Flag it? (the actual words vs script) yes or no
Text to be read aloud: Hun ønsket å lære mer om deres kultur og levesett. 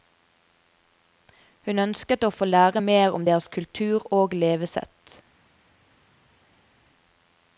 yes